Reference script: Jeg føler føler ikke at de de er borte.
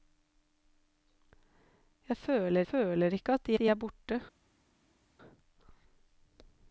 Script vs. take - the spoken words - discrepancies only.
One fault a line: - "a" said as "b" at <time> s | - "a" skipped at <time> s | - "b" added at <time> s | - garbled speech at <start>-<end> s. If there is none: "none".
none